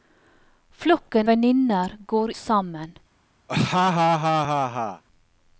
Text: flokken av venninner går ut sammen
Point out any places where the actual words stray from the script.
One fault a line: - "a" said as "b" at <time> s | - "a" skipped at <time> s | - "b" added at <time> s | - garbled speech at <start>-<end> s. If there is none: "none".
- "av" skipped at 1.3 s
- "ut" skipped at 2.3 s